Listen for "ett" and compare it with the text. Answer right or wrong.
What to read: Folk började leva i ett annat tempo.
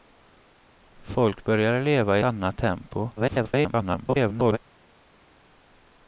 wrong